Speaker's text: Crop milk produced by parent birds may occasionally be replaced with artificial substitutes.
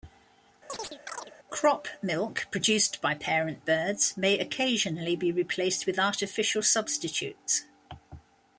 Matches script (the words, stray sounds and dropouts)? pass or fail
fail